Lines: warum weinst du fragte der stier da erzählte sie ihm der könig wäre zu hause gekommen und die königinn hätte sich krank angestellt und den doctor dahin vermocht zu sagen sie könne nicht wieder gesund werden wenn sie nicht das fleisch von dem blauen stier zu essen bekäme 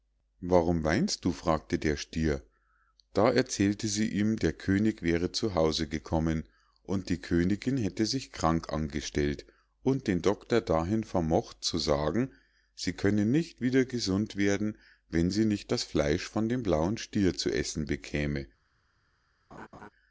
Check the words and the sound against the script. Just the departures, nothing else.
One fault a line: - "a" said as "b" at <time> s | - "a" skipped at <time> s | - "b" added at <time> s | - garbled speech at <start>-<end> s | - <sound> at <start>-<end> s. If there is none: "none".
- laugh at 19.5-19.9 s